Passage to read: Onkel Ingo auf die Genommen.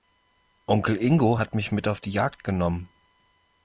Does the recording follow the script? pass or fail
fail